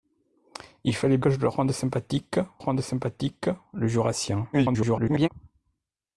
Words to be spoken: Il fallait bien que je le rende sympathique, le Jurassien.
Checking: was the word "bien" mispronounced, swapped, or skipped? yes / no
yes